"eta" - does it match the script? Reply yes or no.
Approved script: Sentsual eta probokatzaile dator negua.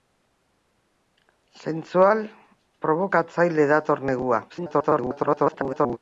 no